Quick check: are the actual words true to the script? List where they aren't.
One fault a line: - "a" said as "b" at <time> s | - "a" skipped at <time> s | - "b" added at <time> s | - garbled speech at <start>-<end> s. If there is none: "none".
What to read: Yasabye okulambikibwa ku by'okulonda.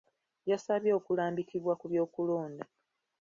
none